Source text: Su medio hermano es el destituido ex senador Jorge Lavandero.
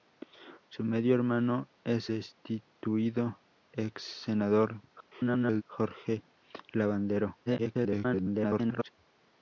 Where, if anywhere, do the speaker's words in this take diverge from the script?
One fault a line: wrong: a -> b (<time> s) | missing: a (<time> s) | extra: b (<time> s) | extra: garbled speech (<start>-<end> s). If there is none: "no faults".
missing: el (2.1 s)
extra: garbled speech (4.9-5.6 s)
extra: garbled speech (7.5-8.9 s)